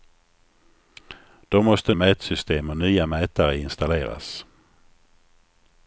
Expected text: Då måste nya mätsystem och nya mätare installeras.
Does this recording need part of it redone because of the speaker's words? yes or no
yes